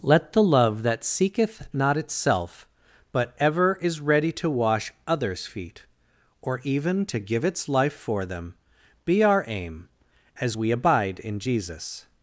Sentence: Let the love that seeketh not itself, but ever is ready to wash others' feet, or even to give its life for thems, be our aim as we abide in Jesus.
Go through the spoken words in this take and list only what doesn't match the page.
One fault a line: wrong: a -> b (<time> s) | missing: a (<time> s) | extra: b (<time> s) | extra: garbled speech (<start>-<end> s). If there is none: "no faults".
wrong: thems -> them (8.2 s)